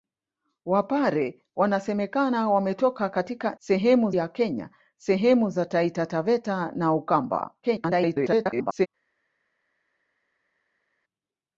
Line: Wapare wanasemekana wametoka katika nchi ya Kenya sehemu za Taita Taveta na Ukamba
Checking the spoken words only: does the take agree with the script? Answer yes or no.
no